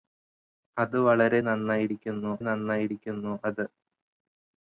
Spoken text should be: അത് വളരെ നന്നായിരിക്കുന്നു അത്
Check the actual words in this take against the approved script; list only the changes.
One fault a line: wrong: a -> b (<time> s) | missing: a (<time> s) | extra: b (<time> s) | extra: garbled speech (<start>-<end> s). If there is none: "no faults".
extra: നന്നായിരിക്കുന്നു (2.4 s)